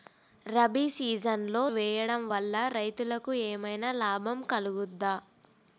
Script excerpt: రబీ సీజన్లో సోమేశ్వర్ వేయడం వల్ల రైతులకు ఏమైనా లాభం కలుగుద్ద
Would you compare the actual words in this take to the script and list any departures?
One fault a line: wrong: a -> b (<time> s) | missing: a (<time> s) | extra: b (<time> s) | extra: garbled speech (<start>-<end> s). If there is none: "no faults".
missing: సోమేశ్వర్ (1.6 s)